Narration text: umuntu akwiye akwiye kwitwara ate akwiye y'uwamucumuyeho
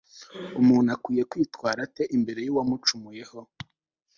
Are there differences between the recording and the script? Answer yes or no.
yes